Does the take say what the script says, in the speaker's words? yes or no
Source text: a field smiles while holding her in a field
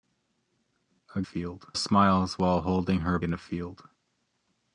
yes